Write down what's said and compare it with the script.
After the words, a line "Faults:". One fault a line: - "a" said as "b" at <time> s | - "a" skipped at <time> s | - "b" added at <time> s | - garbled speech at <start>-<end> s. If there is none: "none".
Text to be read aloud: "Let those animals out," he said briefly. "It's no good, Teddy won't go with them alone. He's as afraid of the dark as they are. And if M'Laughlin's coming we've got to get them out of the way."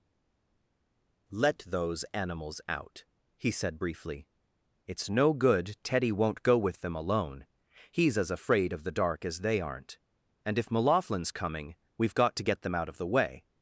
"Let those animals out," he said briefly. "It's no good, Teddy won't go with them alone. He's as afraid of the dark as they aren't. And if M'Laughlin's coming we've got to get them out of the way."
Faults:
- "are" said as "aren't" at 9.6 s